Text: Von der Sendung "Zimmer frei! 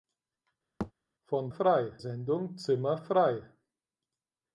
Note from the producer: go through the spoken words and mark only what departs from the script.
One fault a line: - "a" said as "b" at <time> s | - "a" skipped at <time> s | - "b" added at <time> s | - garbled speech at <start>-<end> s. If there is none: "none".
- "der" said as "frei" at 1.5 s